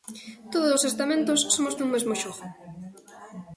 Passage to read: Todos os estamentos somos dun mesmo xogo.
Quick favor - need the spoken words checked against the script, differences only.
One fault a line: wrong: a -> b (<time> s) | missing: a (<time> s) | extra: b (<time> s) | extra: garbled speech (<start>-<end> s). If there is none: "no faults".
no faults